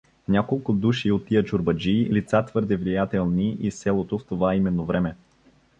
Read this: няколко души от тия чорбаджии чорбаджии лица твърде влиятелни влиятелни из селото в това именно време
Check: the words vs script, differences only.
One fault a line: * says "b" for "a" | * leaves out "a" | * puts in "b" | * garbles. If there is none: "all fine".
* leaves out "чорбаджии"
* leaves out "влиятелни"